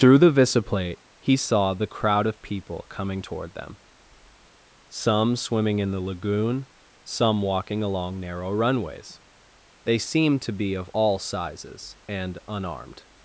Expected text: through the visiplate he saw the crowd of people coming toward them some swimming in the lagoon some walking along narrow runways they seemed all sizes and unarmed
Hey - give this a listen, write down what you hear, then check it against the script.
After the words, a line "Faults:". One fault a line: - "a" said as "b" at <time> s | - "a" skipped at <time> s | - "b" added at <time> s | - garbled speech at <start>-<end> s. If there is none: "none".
through the visiplate he saw the crowd of people coming toward them some swimming in the lagoon some walking along narrow runways they seemed to be of all sizes and unarmed
Faults:
- "to be of" added at 10.4 s